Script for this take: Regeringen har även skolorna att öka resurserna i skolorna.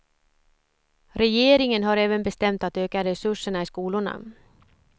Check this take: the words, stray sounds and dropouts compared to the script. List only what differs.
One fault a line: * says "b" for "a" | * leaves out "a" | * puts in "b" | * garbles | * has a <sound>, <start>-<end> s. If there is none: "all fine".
* says "bestämt" for "skolorna"